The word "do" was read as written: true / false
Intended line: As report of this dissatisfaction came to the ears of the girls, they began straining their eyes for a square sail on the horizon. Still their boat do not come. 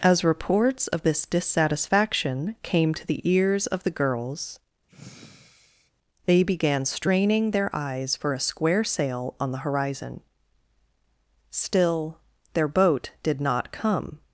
false